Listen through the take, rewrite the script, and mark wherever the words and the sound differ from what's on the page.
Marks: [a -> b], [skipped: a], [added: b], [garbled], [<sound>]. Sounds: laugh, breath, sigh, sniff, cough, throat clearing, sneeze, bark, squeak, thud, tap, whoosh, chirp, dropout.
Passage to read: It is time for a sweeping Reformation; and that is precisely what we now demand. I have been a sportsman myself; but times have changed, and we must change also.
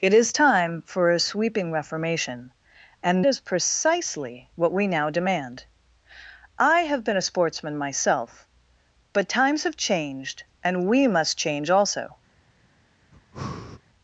It is time for a sweeping Reformation; and [skipped: that] is precisely what we now demand. I have been a sportsman myself; but times have changed, and we must change also. [breath]